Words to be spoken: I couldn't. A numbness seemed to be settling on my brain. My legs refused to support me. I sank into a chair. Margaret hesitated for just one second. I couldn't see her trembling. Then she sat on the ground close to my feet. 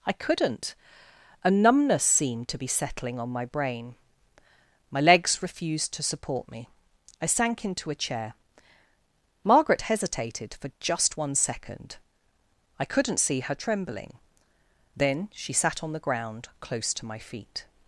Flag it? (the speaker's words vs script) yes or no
no